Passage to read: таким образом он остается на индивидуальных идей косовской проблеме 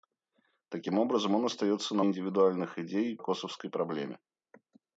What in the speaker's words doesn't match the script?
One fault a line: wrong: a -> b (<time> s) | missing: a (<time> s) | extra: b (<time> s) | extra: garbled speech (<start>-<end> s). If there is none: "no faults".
no faults